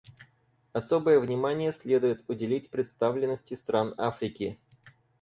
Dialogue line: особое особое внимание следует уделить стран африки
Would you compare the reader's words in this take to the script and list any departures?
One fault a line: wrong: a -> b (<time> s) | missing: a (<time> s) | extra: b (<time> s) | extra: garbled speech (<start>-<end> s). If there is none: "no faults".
missing: особое (1.2 s)
extra: представленности (2.7 s)